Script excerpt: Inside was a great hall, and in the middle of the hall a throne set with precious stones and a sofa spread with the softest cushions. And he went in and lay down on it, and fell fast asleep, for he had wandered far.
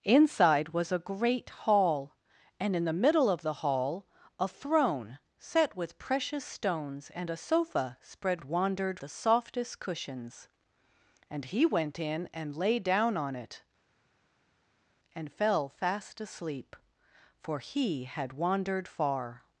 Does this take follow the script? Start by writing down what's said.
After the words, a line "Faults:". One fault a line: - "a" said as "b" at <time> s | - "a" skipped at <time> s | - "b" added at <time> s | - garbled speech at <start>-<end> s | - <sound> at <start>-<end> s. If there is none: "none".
Inside was a great hall, and in the middle of the hall a throne set with precious stones and a sofa spread wandered the softest cushions. And he went in and lay down on it, and fell fast asleep, for he had wandered far.
Faults:
- "with" said as "wandered" at 8.4 s